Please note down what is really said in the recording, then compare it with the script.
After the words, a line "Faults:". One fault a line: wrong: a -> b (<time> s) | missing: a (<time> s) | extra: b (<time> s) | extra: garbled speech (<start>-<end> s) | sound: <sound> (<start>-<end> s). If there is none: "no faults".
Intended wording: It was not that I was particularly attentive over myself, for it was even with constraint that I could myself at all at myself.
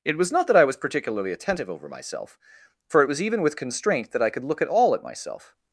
It was not that I was particularly attentive over myself, for it was even with constraint that I could look at all at myself.
Faults:
wrong: myself -> look (4.4 s)